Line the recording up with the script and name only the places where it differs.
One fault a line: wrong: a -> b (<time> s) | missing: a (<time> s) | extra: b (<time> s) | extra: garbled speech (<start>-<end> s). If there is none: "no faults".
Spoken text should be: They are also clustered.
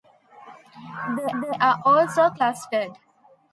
extra: they (1.4 s)